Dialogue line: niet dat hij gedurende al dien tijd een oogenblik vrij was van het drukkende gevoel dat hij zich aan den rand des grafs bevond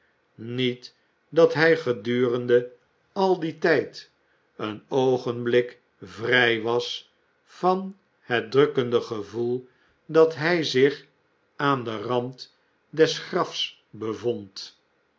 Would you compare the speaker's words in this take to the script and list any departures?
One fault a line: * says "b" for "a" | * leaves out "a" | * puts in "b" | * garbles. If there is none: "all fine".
all fine